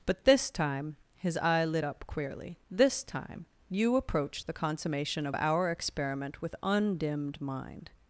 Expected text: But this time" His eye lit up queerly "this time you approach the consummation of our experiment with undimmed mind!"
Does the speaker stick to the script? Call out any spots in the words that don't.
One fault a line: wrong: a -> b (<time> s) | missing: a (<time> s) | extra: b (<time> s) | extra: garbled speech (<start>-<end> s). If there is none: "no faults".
no faults